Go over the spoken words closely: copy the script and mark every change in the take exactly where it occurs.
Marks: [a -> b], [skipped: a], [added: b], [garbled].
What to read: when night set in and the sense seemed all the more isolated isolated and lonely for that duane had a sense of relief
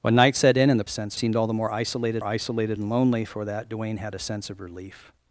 when night set in and the sense seemed all the more isolated isolated and lonely for that duane had a sense of relief